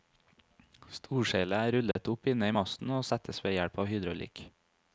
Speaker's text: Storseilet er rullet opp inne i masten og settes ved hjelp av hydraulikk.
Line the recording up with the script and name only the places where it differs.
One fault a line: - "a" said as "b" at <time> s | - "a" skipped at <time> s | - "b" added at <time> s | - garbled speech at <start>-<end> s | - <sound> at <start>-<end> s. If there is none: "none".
- dropout at 1.9-2.0 s